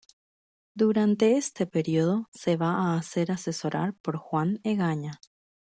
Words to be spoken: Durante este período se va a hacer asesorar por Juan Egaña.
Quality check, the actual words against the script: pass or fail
pass